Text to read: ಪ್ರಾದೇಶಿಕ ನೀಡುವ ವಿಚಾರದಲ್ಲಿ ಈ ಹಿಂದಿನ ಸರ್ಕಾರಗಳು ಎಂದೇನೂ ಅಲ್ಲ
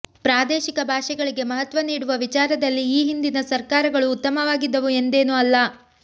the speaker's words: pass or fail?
fail